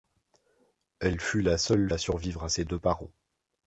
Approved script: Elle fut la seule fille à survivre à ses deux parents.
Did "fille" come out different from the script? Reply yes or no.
yes